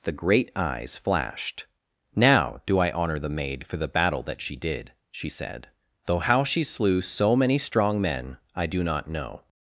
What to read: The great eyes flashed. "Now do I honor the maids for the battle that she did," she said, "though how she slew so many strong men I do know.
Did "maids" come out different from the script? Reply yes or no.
yes